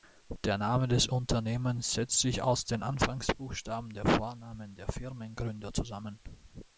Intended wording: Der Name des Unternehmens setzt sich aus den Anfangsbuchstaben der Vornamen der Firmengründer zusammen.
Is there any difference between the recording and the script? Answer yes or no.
no